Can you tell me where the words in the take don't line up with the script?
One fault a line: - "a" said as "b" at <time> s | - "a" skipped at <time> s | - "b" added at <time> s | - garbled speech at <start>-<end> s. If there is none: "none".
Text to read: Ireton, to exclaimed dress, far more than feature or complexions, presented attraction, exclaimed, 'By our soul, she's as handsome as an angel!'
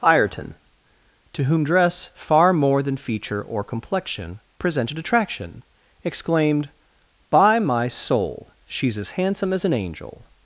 - "exclaimed" said as "whom" at 1.4 s
- "complexions" said as "complexion" at 3.6 s
- "our" said as "my" at 7.6 s